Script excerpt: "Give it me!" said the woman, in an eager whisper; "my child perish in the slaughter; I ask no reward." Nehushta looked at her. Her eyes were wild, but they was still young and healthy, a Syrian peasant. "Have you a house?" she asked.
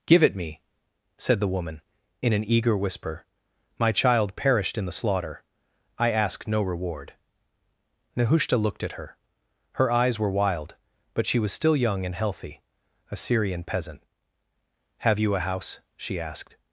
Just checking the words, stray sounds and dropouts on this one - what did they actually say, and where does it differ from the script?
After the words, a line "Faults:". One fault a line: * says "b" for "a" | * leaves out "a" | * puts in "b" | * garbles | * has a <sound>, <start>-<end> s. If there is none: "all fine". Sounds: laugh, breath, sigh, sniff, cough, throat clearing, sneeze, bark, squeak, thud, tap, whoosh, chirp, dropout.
"Give it me!" said the woman, in an eager whisper; "my child perished in the slaughter; I ask no reward." Nehushta looked at her. Her eyes were wild, but she was still young and healthy, a Syrian peasant. "Have you a house?" she asked.
Faults:
* says "perished" for "perish"
* says "she" for "they"